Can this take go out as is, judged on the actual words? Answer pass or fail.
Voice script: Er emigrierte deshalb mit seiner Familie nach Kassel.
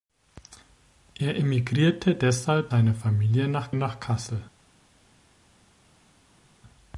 fail